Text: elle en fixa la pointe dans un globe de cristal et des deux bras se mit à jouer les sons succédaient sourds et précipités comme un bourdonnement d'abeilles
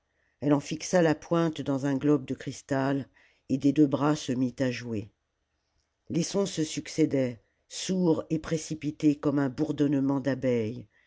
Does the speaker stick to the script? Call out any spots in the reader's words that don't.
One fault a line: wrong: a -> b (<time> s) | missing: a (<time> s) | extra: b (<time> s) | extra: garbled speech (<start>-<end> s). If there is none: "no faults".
extra: se (6.5 s)